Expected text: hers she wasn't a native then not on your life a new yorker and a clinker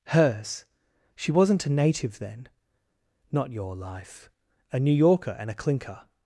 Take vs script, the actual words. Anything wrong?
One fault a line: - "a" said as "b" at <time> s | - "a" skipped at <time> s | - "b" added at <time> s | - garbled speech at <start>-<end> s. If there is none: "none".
- "on" skipped at 3.5 s